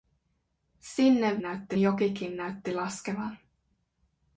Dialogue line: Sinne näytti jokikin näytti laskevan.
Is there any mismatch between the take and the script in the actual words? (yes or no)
no